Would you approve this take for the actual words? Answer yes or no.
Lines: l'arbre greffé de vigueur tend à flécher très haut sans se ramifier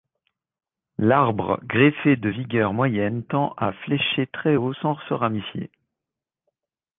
no